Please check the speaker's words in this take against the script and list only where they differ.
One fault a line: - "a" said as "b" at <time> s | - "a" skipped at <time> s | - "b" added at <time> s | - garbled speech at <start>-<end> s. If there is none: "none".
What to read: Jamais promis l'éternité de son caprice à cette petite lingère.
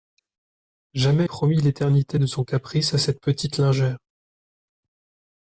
none